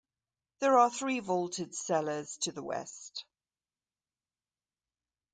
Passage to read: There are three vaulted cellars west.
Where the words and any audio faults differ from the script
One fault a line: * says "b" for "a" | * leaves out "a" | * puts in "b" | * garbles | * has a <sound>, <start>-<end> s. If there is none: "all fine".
* puts in "to the"